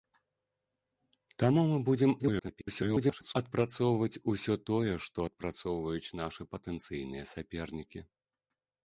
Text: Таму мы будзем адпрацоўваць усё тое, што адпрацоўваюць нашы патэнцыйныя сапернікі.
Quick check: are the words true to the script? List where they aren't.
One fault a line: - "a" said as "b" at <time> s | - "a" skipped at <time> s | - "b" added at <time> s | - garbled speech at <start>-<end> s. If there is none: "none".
- garbled speech at 2.2-3.3 s